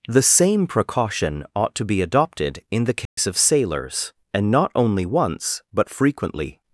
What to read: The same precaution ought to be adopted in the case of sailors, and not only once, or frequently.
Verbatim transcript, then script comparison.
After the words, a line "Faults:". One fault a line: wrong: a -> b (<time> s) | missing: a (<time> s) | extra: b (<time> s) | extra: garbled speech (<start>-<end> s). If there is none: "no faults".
The same precaution ought to be adopted in the case of sailors, and not only once, but frequently.
Faults:
wrong: or -> but (5.7 s)